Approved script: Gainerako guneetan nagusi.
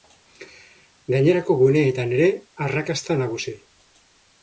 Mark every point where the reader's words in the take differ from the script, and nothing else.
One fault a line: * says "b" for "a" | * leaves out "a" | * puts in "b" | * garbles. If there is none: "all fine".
* puts in "ere arrakasta"